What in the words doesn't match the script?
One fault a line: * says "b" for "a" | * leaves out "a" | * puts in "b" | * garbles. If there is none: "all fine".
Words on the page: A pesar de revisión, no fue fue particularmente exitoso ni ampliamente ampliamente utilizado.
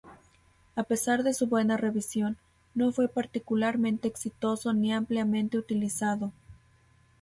* puts in "su buena"
* leaves out "fue"
* leaves out "ampliamente"